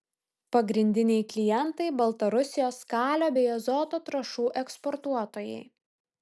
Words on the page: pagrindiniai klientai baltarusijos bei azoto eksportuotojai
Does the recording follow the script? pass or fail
fail